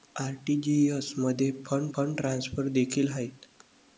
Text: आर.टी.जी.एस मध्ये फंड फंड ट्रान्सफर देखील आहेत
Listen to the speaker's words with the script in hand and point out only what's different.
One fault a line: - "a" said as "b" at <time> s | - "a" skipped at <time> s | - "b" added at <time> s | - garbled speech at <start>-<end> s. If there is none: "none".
none